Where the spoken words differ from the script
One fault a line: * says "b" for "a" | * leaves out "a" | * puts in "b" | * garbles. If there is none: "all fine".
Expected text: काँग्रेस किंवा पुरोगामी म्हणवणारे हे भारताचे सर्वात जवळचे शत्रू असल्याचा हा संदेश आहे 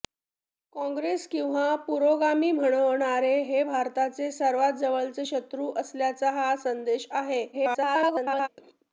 * garbles